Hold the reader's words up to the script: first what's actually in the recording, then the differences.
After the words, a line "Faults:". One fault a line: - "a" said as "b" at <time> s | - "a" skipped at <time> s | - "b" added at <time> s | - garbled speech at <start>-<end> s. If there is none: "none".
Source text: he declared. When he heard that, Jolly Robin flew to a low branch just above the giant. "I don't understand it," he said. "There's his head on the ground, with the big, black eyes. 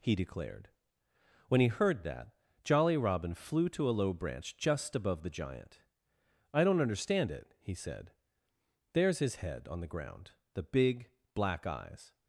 he declared. When he heard that, Jolly Robin flew to a low branch just above the giant. "I don't understand it," he said. "There's his head on the ground, the big, black eyes.
Faults:
- "with" skipped at 10.3 s